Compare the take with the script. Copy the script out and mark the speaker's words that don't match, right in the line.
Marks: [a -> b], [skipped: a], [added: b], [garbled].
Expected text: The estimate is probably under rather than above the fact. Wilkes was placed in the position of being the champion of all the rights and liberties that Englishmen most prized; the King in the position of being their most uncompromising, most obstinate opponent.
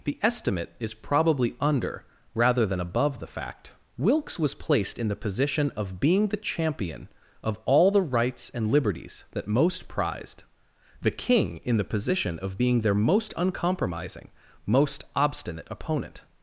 The estimate is probably under rather than above the fact. Wilkes was placed in the position of being the champion of all the rights and liberties that [skipped: Englishmen] most prized; the King in the position of being their most uncompromising, most obstinate opponent.